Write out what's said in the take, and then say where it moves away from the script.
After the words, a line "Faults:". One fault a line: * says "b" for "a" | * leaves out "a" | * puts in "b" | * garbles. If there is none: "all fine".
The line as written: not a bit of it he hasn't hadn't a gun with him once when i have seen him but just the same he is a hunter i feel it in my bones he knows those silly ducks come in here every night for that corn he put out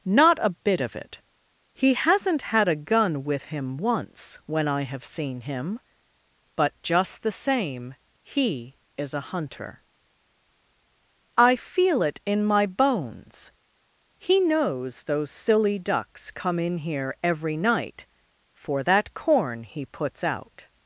not a bit of it he hasn't had a gun with him once when i have seen him but just the same he is a hunter i feel it in my bones he knows those silly ducks come in here every night for that corn he puts out
Faults:
* says "had" for "hadn't"
* says "puts" for "put"